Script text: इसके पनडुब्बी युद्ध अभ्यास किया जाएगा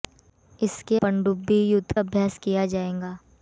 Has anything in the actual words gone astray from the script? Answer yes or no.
no